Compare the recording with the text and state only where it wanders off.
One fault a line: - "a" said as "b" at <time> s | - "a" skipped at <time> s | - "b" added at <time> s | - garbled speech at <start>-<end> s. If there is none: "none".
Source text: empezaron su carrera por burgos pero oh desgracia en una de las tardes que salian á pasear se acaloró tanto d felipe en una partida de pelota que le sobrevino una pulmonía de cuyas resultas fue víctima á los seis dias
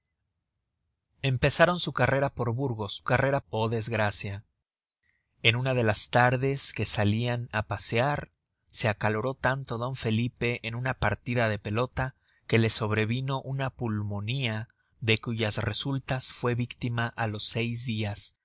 - "pero" said as "carrera" at 3.0 s